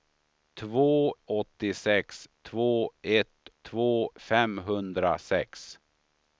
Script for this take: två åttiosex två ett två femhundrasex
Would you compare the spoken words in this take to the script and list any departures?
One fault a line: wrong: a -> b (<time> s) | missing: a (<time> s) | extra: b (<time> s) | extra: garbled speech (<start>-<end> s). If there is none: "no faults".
no faults